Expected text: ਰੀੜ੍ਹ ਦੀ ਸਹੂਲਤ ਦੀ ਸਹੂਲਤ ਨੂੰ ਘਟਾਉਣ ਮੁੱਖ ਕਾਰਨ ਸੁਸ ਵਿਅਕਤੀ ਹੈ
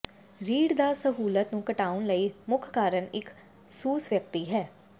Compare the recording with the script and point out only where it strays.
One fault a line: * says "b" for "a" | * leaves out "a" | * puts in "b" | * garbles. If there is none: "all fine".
* leaves out "ਦੀ ਸਹੂਲਤ"
* puts in "ਲਈ"
* puts in "ਇੱਕ"